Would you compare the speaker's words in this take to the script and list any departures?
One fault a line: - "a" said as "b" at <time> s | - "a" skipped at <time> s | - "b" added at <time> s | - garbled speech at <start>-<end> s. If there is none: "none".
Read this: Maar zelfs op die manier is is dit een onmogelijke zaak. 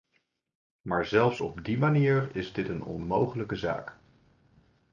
- "is" skipped at 2.5 s